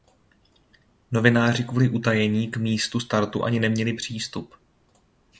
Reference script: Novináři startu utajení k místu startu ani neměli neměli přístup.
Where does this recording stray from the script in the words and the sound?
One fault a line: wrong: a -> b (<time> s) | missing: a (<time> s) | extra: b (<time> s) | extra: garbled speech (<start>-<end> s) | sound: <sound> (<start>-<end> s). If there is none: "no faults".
wrong: startu -> kvůli (1.6 s)
missing: neměli (3.9 s)